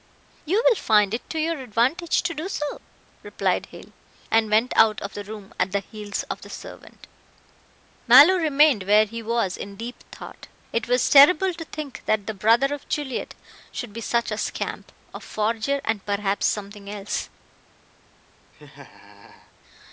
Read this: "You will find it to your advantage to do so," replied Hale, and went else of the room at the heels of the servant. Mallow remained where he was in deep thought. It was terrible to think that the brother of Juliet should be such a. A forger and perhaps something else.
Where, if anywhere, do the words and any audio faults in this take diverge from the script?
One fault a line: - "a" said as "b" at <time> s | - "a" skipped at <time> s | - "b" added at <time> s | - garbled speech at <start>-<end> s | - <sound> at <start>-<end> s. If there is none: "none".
- "else" said as "out" at 4.8 s
- "scamp" added at 14.4 s
- laugh at 18.5-19.5 s